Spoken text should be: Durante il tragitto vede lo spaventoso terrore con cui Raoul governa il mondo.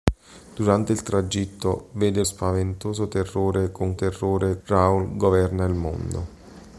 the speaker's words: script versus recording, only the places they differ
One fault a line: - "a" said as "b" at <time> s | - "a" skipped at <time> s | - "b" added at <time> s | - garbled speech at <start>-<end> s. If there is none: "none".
- "lo" skipped at 2.2 s
- "cui" said as "terrore" at 3.9 s